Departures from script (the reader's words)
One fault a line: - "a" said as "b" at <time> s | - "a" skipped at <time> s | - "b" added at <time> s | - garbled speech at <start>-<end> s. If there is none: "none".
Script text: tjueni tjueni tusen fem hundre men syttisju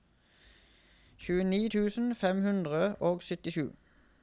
- "tjueni" skipped at 1.6 s
- "men" said as "og" at 3.1 s